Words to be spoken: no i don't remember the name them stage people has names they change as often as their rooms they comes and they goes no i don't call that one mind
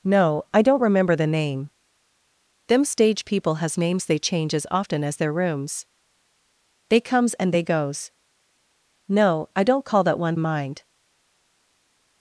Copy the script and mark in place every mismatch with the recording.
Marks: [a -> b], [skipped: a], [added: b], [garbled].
no i don't remember the name them stage people has names they change as often as their rooms they comes and they goes no i don't call that one mind